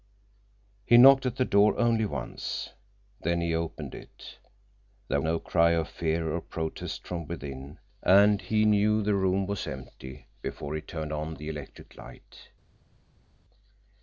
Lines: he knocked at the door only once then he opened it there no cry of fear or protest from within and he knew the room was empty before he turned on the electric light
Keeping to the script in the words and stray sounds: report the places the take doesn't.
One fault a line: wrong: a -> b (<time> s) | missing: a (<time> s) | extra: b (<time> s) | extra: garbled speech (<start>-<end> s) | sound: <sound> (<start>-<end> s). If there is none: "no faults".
no faults